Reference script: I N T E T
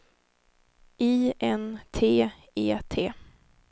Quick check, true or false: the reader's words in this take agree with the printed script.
true